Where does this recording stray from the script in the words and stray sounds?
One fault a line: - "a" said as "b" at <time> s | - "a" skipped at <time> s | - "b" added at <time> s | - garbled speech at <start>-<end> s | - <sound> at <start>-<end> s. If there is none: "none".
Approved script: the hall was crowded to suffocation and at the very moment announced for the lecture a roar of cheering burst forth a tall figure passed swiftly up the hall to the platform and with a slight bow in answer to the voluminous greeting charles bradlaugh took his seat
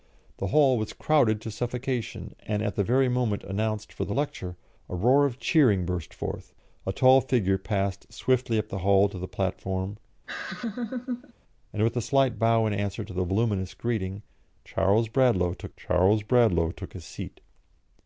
- laugh at 10.3-11.3 s
- "charles bradlaugh took" added at 15.7 s